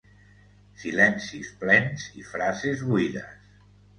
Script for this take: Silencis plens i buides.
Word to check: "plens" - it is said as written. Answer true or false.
true